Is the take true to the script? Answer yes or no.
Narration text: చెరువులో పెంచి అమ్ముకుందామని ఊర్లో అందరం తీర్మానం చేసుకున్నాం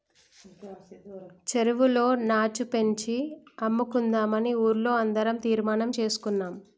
no